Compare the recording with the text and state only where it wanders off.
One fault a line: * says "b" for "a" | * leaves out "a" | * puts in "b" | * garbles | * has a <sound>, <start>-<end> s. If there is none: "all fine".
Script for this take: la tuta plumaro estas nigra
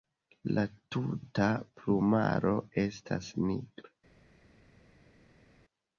all fine